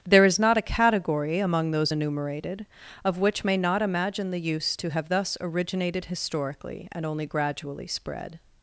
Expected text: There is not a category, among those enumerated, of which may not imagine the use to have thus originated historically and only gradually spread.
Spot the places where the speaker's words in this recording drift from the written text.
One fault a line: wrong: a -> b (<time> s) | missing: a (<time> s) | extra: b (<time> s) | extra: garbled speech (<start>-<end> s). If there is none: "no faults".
no faults